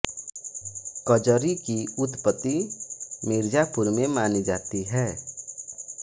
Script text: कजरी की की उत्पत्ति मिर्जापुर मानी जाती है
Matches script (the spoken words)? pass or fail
fail